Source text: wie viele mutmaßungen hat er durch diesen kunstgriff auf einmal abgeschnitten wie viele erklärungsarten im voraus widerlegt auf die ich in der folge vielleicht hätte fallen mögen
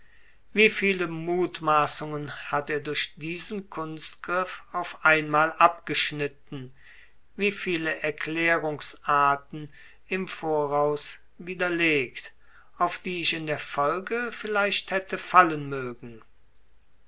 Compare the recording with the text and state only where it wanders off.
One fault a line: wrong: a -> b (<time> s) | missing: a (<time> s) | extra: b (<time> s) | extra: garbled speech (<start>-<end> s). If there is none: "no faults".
no faults